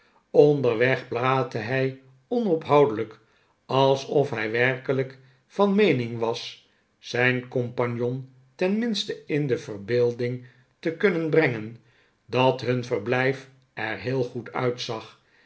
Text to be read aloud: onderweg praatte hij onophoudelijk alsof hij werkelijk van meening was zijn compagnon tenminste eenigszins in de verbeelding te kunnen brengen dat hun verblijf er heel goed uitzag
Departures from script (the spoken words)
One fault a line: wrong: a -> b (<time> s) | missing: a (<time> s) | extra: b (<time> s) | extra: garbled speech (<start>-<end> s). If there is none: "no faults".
missing: eenigszins (9.3 s)